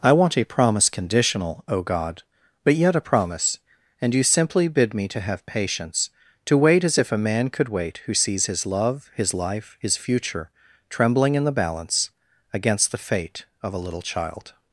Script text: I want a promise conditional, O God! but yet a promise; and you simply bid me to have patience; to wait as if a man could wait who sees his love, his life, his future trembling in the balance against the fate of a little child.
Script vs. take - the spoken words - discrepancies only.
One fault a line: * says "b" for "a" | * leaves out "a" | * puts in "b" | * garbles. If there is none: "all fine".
all fine